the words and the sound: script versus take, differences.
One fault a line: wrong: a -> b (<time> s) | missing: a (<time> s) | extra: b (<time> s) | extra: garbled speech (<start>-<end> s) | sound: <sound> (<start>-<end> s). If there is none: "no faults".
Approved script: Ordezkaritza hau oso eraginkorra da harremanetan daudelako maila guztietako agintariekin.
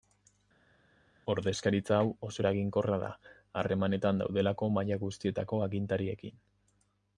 no faults